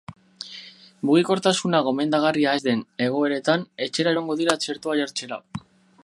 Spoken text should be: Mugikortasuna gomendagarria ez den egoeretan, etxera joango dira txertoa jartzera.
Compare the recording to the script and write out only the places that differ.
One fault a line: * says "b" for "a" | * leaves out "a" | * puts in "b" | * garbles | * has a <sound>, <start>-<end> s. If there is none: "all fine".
all fine